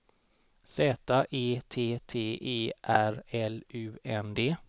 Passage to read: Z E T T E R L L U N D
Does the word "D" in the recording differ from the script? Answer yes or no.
no